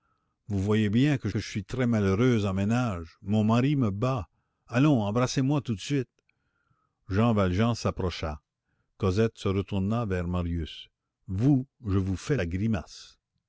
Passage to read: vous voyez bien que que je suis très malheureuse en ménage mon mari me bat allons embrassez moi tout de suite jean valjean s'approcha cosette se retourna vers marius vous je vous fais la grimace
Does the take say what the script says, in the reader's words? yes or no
yes